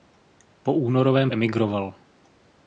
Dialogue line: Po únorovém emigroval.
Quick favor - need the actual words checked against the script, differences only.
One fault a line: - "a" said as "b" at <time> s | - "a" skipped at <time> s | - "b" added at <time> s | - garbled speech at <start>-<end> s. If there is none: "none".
none